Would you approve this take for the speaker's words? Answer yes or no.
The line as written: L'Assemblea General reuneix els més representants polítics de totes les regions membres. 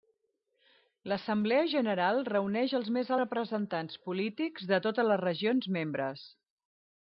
yes